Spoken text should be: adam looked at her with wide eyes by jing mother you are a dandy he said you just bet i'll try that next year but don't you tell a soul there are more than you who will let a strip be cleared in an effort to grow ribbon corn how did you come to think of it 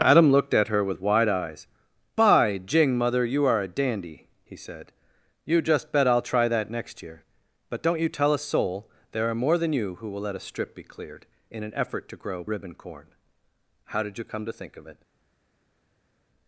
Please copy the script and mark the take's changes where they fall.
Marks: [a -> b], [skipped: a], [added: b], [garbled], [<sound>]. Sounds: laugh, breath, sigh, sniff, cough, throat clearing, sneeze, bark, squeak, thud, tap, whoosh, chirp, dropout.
adam looked at her with wide eyes by jing mother you are a dandy he said you just bet i'll try that next year but don't you tell a soul there are more than you who will let a strip be cleared in an effort to grow ribbon corn how did you come to think of it